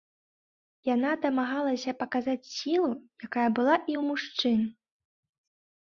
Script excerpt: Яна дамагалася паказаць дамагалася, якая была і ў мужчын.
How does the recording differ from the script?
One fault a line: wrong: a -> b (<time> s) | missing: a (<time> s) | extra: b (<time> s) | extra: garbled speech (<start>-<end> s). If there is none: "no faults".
wrong: дамагалася -> сілу (2.5 s)